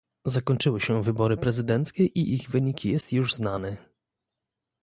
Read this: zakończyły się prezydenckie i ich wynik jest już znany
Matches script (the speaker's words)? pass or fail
fail